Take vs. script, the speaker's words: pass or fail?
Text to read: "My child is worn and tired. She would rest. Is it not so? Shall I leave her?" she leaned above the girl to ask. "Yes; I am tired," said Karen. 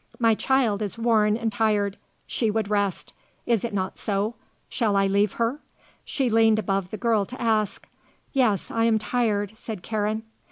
pass